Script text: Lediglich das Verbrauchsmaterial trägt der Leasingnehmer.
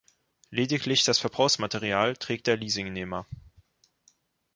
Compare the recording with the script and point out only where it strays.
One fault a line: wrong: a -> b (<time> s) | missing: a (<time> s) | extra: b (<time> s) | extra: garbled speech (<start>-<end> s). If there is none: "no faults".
no faults